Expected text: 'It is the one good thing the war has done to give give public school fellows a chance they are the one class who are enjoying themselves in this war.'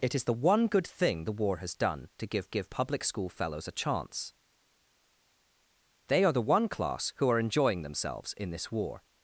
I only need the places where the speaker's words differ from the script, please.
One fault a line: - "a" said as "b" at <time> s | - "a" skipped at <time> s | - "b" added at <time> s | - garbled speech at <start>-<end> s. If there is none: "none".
none